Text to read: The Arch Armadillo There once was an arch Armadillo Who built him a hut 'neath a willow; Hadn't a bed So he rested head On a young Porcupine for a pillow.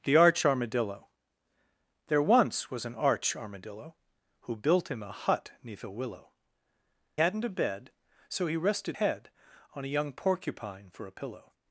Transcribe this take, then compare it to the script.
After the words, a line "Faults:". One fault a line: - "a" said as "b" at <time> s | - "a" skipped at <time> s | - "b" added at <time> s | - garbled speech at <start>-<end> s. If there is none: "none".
The Arch Armadillo There once was an arch Armadillo Who built him a hut 'neath a willow; Hadn't a bed So he rested head On a young Porcupine for a pillow.
Faults:
none